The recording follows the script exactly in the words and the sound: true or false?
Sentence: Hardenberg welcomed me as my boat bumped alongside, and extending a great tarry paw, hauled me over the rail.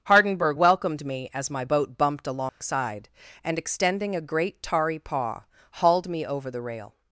false